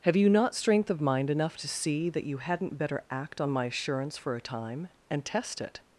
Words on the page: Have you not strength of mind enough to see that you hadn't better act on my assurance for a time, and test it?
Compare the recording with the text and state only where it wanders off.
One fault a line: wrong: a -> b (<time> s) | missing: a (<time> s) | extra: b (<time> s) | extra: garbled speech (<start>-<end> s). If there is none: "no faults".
no faults